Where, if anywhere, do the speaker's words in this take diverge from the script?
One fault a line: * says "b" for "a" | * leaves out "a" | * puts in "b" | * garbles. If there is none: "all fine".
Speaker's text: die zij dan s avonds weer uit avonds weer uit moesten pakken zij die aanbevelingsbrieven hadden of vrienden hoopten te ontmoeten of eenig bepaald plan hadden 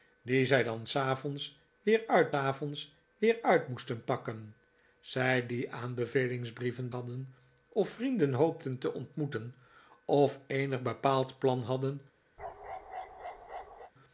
all fine